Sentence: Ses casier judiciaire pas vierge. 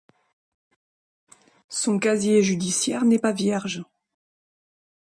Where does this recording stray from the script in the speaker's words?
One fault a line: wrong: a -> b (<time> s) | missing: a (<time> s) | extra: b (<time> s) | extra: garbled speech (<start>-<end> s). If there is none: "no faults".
wrong: Ses -> Son (1.7 s)
extra: n'est (3.0 s)